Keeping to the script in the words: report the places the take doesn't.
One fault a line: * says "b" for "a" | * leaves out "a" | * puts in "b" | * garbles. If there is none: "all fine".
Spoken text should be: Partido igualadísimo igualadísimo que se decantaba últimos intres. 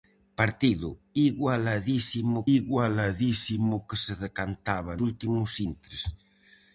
all fine